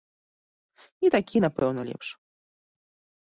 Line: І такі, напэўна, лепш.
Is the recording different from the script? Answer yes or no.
no